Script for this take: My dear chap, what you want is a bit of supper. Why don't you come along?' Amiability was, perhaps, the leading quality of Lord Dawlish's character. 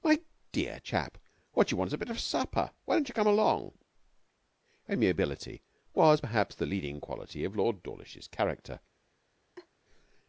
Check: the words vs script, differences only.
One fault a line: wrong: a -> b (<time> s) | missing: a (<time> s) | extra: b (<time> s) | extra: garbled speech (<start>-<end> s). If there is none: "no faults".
no faults